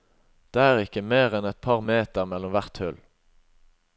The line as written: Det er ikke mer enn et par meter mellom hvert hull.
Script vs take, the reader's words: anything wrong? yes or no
no